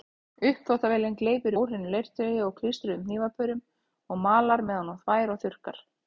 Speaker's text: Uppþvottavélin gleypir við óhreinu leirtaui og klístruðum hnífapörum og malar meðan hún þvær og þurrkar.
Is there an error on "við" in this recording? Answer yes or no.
yes